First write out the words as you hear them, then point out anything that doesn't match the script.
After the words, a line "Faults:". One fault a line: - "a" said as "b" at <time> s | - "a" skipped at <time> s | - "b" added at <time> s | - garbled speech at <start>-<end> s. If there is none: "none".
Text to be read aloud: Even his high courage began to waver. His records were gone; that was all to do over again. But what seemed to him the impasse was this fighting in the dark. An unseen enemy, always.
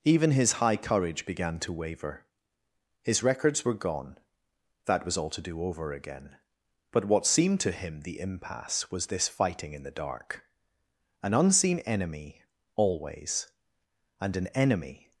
Even his high courage began to waver. His records were gone; that was all to do over again. But what seemed to him the impasse was this fighting in the dark. An unseen enemy, always. And an enemy
Faults:
- "And an enemy" added at 14.2 s